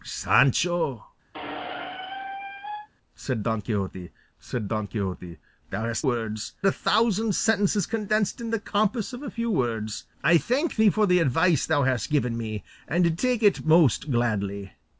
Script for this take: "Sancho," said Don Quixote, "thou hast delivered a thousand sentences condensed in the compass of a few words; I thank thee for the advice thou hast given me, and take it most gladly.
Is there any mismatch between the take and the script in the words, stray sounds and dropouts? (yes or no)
yes